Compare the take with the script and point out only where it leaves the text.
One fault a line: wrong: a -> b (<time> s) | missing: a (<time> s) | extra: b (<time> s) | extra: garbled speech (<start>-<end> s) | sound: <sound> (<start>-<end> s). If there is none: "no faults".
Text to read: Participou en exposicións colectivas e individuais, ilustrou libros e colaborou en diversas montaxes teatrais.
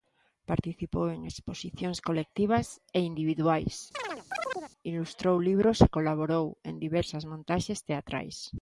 sound: chirp (3.9-4.7 s)